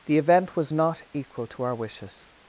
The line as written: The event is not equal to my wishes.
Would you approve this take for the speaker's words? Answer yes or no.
no